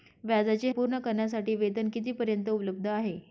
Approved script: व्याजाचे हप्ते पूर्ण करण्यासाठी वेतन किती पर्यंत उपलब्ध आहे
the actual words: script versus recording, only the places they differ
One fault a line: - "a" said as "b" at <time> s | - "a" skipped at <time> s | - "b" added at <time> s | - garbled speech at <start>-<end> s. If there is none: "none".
- "हप्ते" skipped at 0.7 s